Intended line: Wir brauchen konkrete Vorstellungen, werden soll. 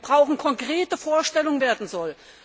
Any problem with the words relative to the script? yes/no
no